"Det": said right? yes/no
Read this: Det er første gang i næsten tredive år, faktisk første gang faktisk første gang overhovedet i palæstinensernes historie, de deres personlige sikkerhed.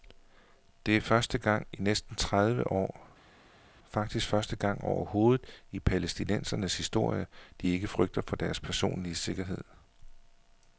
yes